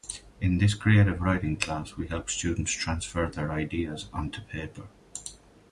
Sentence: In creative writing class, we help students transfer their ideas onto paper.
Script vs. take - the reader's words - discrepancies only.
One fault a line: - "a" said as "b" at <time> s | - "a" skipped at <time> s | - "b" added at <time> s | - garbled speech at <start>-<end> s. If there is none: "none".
- "this" added at 0.6 s